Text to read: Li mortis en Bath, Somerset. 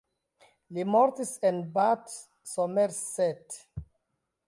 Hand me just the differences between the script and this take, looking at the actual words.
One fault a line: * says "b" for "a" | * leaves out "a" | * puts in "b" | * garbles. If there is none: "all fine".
all fine